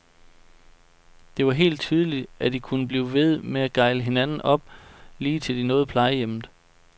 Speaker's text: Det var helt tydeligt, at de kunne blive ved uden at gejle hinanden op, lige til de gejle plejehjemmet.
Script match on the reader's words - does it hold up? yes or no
no